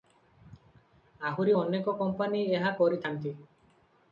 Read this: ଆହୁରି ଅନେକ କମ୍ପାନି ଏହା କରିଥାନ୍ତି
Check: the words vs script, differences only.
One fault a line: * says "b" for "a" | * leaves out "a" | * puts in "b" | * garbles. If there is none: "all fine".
all fine